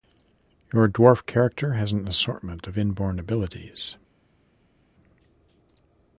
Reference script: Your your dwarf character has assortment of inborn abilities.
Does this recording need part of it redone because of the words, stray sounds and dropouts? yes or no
yes